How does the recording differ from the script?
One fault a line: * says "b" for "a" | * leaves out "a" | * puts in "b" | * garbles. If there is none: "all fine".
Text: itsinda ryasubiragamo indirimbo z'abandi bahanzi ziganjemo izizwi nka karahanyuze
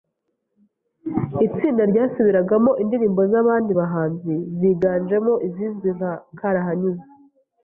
all fine